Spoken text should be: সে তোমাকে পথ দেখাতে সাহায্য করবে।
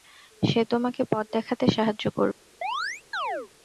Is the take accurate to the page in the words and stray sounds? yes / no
no